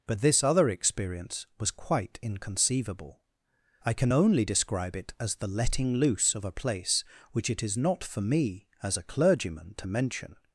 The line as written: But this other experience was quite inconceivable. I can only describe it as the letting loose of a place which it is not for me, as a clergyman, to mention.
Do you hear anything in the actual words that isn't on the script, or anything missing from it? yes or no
no